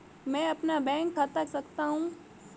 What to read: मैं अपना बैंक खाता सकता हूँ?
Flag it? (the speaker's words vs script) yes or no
no